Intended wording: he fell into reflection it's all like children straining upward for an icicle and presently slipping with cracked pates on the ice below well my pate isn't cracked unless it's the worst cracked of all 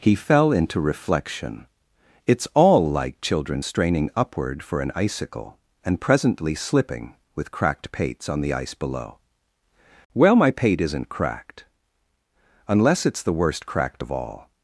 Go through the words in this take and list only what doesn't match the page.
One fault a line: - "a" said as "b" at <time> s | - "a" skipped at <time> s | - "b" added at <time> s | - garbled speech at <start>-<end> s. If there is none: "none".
none